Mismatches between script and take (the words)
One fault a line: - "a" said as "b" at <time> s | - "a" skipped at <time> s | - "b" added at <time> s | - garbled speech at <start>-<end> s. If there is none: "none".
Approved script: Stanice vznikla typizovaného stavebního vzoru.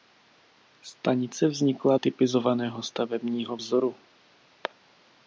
none